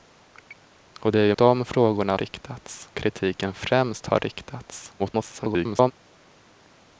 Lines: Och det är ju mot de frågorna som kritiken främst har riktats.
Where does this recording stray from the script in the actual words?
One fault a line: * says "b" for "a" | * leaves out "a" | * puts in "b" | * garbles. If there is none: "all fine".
* leaves out "mot"
* says "riktats" for "som"
* garbles